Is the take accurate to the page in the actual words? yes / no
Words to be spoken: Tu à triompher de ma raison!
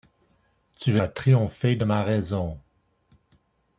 yes